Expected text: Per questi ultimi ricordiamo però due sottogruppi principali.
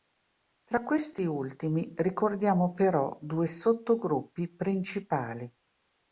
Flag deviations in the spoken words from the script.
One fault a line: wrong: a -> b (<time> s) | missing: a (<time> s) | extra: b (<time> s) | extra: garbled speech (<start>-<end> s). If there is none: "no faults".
wrong: Per -> Tra (0.6 s)